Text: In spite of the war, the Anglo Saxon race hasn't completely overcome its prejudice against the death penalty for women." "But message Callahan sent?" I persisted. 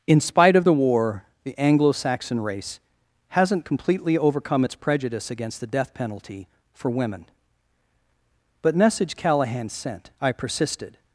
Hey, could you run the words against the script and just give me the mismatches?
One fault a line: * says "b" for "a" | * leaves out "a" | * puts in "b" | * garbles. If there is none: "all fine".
all fine